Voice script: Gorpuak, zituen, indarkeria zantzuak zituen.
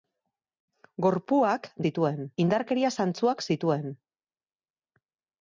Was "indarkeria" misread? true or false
false